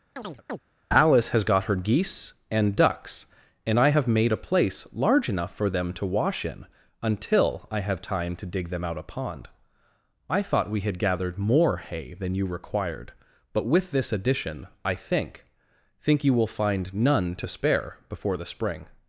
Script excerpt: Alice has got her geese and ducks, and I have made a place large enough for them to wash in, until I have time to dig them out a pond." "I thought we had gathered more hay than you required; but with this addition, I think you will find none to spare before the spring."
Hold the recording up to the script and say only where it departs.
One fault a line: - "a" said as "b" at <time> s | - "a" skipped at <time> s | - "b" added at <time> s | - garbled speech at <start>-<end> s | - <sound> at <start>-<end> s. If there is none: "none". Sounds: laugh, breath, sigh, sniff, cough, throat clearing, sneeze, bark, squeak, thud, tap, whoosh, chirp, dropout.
- chirp at 0.2-0.6 s
- "think" added at 16.0 s